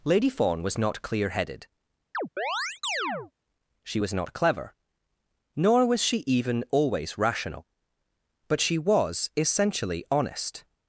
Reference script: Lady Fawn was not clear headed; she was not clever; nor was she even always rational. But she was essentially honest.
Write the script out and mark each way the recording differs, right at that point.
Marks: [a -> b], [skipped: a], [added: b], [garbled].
Lady Fawn was not clear headed; she was not clever; nor was she even always rational. But she was essentially honest.